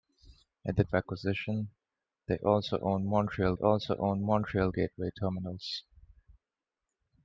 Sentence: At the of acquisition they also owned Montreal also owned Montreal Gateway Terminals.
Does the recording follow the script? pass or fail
pass